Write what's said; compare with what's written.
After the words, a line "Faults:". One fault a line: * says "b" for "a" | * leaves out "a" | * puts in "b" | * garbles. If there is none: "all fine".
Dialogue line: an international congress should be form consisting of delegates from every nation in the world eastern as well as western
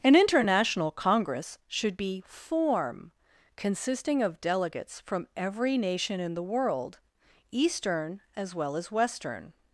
an international congress should be form consisting of delegates from every nation in the world eastern as well as western
Faults:
all fine